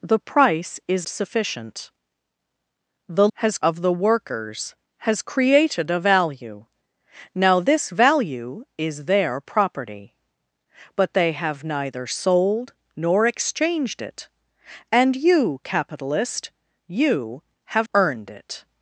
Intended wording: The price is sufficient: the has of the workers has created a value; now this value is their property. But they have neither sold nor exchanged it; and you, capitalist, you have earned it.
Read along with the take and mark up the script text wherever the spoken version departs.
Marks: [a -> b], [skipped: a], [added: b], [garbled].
The price is sufficient: the has of the workers has created a value; now this value is their property. But they have neither sold nor exchanged it; and you, capitalist, you have earned it.